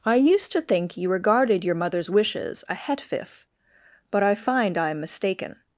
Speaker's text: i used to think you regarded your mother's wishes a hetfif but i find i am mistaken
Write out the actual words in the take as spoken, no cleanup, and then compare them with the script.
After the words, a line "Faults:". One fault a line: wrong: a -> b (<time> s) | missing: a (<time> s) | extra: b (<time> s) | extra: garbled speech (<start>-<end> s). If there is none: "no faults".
i used to think you regarded your mother's wishes a hetfif but i find i am mistaken
Faults:
no faults